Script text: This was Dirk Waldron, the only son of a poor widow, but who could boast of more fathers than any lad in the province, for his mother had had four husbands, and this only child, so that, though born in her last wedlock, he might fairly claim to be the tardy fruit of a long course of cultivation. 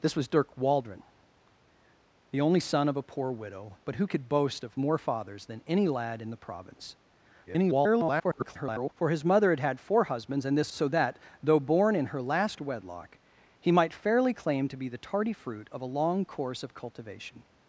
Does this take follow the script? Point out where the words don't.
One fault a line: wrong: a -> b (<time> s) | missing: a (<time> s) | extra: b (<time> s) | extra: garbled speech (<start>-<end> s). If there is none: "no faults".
extra: garbled speech (7.5-8.9 s)
missing: only child (10.7 s)